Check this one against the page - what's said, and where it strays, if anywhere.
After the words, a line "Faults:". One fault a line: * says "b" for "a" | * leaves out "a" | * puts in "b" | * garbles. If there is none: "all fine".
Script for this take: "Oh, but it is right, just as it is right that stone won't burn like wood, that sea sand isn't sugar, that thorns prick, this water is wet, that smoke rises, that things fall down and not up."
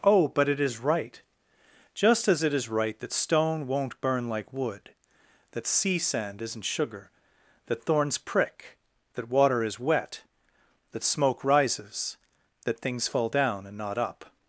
"Oh, but it is right, just as it is right that stone won't burn like wood, that sea sand isn't sugar, that thorns prick, that water is wet, that smoke rises, that things fall down and not up."
Faults:
* says "that" for "this"